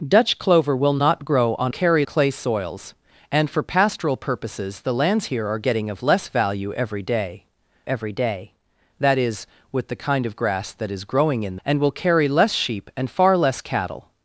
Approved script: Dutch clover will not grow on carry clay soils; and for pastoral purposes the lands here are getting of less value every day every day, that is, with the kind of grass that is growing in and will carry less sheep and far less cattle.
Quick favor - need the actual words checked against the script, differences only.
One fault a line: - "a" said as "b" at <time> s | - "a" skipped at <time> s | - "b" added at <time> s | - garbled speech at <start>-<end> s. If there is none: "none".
none